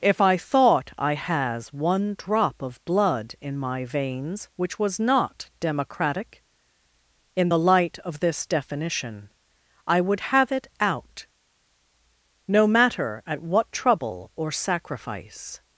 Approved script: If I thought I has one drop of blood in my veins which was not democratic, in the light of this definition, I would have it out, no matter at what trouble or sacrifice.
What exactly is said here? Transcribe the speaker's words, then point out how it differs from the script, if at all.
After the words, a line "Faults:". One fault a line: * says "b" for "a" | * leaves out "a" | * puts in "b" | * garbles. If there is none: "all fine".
If I thought I has one drop of blood in my veins which was not democratic, in the light of this definition, I would have it out, no matter at what trouble or sacrifice.
Faults:
all fine